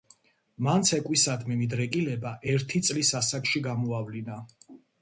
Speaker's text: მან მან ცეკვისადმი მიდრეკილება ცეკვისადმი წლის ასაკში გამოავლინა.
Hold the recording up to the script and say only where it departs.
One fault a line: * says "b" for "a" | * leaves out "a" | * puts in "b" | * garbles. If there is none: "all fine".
* leaves out "მან"
* says "ერთი" for "ცეკვისადმი"